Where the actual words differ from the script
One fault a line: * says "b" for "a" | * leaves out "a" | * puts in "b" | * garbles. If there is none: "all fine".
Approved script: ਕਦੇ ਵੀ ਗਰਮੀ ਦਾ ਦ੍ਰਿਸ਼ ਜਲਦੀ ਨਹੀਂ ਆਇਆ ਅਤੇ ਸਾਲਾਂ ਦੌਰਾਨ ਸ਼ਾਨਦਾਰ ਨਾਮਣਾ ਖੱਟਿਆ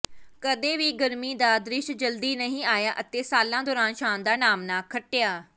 all fine